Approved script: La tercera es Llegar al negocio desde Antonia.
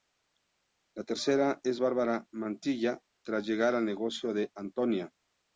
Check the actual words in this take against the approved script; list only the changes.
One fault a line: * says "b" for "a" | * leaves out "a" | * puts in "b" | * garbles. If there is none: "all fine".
* puts in "Bárbara Mantilla tras"
* says "de" for "desde"